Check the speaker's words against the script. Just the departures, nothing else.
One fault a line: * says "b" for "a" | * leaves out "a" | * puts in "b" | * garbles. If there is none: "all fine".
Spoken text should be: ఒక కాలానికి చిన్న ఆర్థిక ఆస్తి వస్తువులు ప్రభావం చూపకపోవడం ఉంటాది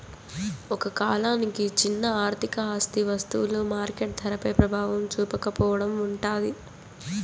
* puts in "మార్కెట్ ధరపై"